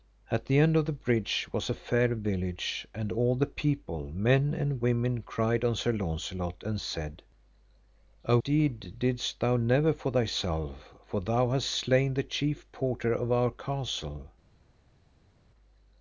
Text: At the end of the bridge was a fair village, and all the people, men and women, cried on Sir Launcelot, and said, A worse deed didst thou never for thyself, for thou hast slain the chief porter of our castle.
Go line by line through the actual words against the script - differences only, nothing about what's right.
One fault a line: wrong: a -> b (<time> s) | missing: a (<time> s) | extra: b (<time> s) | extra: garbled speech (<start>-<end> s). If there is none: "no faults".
missing: worse (8.4 s)